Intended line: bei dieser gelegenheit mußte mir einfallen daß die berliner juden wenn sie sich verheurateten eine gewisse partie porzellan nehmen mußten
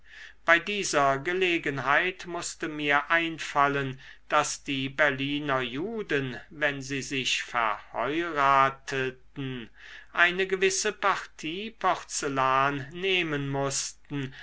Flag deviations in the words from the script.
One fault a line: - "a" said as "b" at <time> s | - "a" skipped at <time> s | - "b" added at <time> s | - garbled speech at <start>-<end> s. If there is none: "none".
none